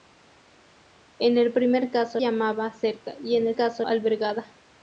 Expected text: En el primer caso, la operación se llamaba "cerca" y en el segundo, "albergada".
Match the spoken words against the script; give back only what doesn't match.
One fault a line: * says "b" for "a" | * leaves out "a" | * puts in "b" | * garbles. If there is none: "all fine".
* leaves out "la operación se"
* says "caso" for "segundo"